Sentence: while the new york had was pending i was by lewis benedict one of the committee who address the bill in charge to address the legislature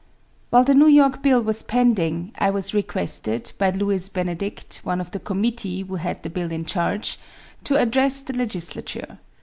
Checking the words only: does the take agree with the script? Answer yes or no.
no